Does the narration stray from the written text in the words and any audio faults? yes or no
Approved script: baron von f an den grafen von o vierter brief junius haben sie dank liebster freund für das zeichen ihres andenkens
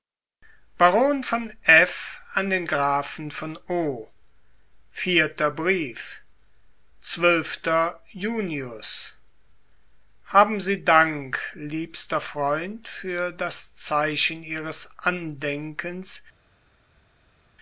no